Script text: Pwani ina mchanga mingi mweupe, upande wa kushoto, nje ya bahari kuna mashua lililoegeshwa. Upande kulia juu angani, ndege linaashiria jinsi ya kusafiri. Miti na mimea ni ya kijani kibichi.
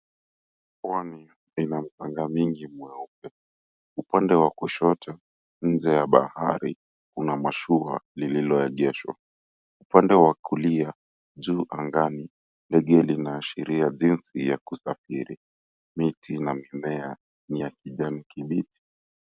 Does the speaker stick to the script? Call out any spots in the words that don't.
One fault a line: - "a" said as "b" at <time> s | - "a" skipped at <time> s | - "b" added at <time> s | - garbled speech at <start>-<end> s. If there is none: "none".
- "wa" added at 10.1 s